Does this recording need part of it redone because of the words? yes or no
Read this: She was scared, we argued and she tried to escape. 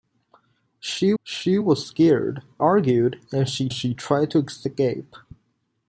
yes